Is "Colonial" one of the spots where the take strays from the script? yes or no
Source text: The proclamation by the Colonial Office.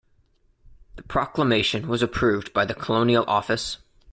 no